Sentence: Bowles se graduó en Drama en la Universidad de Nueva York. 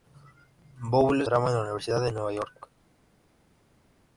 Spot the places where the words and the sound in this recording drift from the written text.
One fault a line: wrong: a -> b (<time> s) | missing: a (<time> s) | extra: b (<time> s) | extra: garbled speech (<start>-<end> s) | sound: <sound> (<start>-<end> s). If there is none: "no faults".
missing: se graduó en (1.3 s)